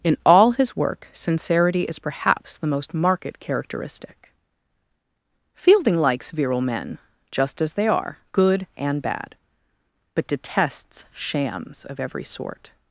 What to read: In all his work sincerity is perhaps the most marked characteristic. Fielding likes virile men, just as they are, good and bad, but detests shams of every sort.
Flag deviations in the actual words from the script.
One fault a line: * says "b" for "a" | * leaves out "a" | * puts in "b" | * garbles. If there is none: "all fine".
all fine